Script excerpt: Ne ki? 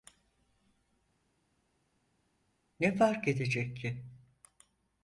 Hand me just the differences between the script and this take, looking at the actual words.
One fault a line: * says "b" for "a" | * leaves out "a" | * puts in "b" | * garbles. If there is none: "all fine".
* puts in "fark edecek"